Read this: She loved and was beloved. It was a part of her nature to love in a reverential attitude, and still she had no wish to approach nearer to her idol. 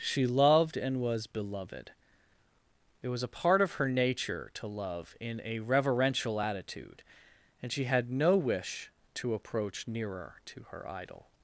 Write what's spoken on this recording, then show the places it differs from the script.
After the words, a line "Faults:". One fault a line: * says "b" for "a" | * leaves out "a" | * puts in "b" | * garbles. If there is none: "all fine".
She loved and was beloved. It was a part of her nature to love in a reverential attitude, and she had no wish to approach nearer to her idol.
Faults:
* leaves out "still"